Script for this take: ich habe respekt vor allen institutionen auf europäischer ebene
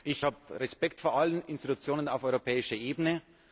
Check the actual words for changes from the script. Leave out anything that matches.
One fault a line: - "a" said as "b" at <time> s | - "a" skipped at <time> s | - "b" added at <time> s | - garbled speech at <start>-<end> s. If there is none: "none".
none